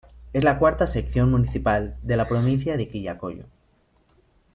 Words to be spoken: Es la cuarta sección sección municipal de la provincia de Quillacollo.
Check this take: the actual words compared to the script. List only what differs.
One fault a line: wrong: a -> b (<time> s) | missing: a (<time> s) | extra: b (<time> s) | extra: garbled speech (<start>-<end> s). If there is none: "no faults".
missing: sección (1.3 s)